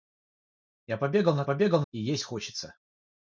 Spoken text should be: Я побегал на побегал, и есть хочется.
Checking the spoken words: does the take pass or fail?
pass